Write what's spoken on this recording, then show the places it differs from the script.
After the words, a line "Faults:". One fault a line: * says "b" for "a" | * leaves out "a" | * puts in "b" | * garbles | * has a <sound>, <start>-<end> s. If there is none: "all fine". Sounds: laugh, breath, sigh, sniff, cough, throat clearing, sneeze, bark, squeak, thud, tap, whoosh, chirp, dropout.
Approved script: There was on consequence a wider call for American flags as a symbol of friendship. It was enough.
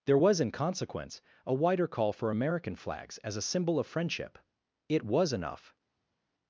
There was in consequence a wider call for American flags as a symbol of friendship. It was enough.
Faults:
* says "in" for "on"